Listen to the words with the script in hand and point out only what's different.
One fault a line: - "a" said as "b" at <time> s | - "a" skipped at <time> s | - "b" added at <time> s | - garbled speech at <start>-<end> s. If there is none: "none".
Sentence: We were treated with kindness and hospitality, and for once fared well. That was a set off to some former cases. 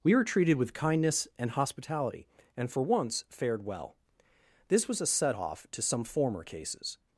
- "That" said as "This" at 4.7 s